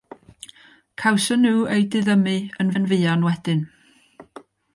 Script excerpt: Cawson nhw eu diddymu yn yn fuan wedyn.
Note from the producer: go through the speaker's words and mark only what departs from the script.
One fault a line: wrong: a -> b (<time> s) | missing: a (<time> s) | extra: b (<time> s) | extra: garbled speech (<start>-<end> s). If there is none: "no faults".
no faults